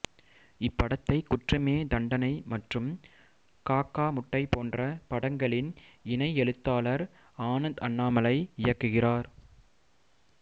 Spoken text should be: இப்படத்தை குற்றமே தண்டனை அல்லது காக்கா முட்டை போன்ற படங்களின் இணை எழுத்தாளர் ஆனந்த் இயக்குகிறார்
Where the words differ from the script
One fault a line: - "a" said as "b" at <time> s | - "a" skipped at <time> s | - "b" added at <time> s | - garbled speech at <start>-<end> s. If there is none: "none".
- "அல்லது" said as "மற்றும்" at 2.5 s
- "அண்ணாமலை" added at 7.9 s